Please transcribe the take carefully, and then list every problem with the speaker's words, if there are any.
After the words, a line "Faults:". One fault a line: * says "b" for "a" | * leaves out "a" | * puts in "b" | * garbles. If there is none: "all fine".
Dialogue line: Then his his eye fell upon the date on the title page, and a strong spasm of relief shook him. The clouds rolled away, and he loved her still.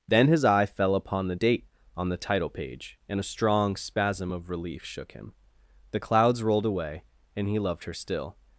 Then his eye fell upon the date on the title page, and a strong spasm of relief shook him. The clouds rolled away, and he loved her still.
Faults:
* leaves out "his"